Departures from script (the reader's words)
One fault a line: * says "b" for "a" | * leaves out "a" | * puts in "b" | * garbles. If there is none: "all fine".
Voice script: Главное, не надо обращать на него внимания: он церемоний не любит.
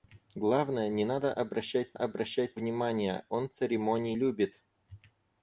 * says "обращать" for "него"
* leaves out "не"